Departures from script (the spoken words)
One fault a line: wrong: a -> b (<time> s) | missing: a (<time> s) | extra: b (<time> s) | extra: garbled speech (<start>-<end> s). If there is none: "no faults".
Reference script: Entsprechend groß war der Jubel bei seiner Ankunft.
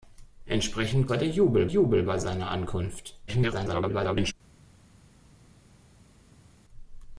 missing: groß (1.1 s)
extra: Jubel (1.6 s)
extra: garbled speech (3.3-4.3 s)